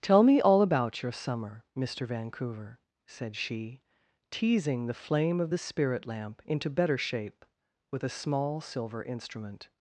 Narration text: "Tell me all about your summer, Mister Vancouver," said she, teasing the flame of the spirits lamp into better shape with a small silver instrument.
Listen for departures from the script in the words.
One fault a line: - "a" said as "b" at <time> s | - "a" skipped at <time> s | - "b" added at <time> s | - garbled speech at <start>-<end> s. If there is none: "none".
- "spirits" said as "spirit" at 5.6 s